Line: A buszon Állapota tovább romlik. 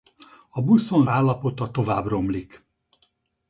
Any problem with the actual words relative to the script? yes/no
no